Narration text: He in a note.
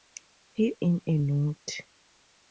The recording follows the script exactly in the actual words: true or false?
true